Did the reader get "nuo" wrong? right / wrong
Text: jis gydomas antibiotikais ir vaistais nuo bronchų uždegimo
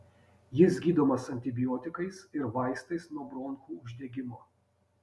right